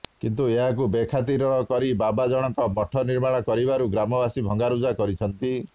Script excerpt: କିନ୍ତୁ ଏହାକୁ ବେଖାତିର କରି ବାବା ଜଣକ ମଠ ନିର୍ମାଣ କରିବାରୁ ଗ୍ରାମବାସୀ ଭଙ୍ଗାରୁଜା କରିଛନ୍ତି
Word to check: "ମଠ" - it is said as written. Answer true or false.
true